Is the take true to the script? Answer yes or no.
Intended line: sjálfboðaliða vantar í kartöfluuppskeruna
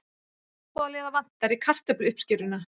yes